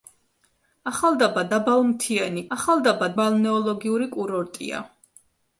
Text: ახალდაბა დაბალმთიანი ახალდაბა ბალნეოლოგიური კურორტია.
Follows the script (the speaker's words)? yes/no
yes